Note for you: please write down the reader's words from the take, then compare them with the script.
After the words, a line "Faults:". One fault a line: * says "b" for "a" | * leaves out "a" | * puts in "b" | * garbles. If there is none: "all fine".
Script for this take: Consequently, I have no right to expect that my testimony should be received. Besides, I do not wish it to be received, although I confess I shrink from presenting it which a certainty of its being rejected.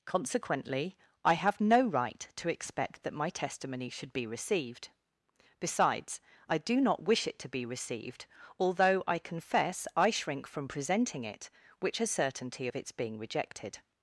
Consequently, I have no right to expect that my testimony should be received. Besides, I do not wish it to be received, although I confess I shrink from presenting it which a certainty of its being rejected.
Faults:
all fine